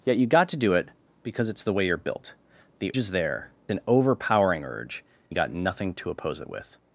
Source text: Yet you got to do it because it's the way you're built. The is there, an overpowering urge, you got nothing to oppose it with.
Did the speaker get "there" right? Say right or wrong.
right